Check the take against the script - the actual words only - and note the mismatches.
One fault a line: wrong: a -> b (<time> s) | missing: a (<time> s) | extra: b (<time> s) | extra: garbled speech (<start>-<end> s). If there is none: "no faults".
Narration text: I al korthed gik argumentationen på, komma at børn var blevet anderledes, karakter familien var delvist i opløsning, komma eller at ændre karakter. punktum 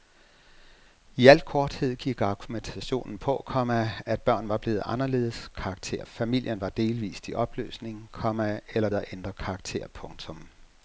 no faults